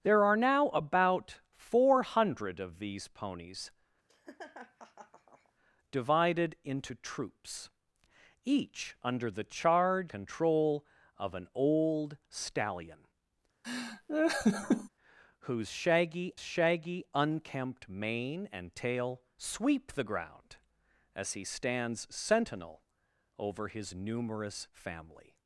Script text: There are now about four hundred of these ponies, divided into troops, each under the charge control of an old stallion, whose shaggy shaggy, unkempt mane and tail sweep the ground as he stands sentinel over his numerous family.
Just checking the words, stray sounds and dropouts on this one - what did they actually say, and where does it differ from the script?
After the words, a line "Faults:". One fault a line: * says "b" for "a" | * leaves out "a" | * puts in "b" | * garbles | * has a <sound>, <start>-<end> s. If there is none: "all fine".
There are now about four hundred of these ponies, divided into troops, each under the charge control of an old stallion, whose shaggy shaggy, unkempt mane and tail sweep the ground as he stands sentinel over his numerous family.
Faults:
* has a laugh, 4.1-5.5 s
* has a laugh, 13.6-14.9 s